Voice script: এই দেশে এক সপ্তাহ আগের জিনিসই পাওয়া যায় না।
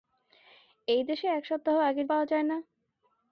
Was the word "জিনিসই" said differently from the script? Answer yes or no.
yes